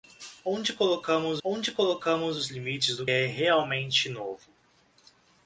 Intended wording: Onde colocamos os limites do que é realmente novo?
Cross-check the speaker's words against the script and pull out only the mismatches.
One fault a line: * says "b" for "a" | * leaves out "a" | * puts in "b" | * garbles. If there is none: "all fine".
* puts in "onde colocamos"
* leaves out "que"